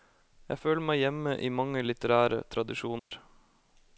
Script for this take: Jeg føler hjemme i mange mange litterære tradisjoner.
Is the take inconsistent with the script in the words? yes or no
yes